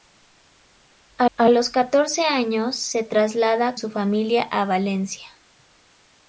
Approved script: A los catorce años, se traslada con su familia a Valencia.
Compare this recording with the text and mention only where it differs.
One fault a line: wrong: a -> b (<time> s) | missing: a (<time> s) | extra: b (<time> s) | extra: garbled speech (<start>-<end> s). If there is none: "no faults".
extra: a (1.4 s)
missing: con (3.8 s)